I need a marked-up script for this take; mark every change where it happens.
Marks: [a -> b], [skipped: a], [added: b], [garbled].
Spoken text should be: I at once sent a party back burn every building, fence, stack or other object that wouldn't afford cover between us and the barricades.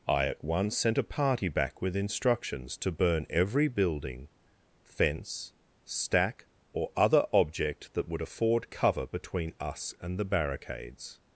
I at once sent a party back [added: with instructions to] burn every building, fence, stack or other object that [wouldn't -> would] afford cover between us and the barricades.